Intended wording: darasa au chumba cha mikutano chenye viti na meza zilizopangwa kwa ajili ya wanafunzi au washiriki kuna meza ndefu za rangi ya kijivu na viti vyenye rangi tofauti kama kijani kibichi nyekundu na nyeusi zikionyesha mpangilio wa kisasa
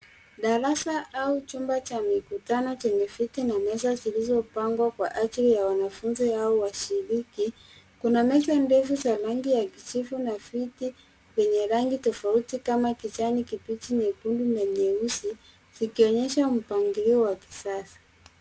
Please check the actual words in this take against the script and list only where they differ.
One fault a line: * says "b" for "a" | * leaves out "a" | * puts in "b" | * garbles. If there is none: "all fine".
all fine